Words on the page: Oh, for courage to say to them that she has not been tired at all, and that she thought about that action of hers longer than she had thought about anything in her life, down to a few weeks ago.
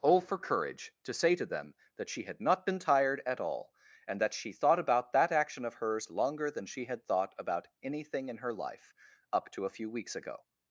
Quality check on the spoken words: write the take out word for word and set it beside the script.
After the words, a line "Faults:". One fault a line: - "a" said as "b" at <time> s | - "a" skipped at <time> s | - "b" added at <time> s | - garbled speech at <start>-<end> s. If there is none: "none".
Oh, for courage to say to them that she had not been tired at all, and that she thought about that action of hers longer than she had thought about anything in her life, up to a few weeks ago.
Faults:
- "has" said as "had" at 2.2 s
- "down" said as "up" at 9.3 s